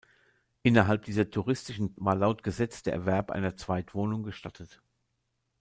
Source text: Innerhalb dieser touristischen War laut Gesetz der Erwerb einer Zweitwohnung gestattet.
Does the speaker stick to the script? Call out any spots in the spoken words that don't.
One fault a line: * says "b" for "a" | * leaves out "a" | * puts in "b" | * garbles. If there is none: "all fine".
all fine